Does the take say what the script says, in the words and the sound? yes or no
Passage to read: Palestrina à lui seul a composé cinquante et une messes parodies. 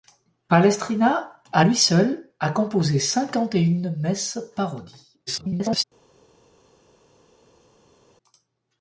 no